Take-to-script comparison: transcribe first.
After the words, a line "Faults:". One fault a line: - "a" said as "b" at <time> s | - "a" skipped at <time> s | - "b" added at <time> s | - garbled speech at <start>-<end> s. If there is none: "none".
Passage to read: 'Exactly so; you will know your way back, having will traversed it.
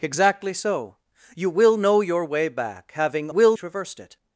'Exactly so; you will know your way back, having will traversed it.
Faults:
none